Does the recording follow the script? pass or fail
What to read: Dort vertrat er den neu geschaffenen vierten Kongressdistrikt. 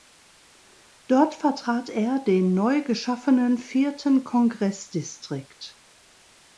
pass